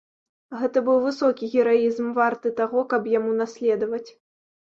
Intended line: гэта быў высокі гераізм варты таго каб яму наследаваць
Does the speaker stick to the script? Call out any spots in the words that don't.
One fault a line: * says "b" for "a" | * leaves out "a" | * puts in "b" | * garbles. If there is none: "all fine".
all fine